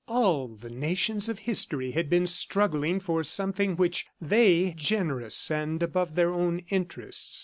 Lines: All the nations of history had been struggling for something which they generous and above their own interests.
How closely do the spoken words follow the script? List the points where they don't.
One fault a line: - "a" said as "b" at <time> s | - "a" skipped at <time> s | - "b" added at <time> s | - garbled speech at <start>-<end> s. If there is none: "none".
none